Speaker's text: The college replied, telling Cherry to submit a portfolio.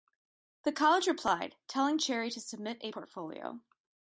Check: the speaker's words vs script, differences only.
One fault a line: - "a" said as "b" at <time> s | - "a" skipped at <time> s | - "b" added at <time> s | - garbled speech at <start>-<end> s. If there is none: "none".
none